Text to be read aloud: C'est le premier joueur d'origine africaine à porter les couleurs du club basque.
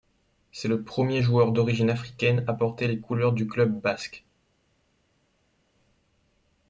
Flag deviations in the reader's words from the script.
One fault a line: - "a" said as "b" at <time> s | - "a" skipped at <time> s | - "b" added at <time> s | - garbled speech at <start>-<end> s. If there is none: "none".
none